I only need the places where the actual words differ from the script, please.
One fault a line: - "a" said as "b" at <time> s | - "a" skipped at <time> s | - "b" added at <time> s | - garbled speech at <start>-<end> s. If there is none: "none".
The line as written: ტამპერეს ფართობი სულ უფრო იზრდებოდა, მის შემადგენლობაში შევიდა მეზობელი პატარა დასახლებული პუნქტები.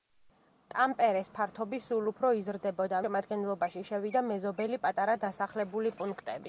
- "მის" skipped at 3.0 s